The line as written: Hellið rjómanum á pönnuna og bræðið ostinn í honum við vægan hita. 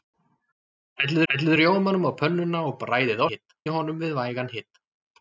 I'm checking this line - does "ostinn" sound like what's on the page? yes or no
no